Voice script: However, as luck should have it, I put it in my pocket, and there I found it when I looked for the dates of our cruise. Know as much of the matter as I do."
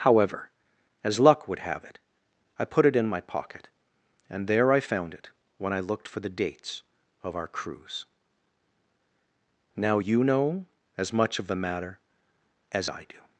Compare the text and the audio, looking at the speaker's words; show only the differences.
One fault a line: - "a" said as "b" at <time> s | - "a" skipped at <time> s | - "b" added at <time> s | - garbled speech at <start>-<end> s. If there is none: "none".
- "should" said as "would" at 1.5 s
- "Now you" added at 9.8 s